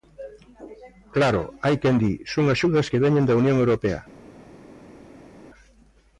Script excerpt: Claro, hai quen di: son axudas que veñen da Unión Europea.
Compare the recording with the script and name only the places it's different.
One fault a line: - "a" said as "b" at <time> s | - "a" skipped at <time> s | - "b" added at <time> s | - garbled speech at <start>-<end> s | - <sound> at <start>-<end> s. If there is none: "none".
none